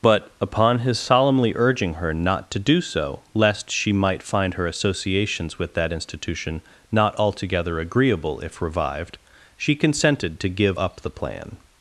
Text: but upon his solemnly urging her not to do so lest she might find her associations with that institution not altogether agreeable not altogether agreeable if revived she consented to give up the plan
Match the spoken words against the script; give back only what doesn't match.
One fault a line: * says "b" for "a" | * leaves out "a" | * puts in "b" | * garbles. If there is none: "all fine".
* leaves out "not altogether agreeable"